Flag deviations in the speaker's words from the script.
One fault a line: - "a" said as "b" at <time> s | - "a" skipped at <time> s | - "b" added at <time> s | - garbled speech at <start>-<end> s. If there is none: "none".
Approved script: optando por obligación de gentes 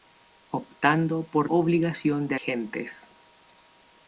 none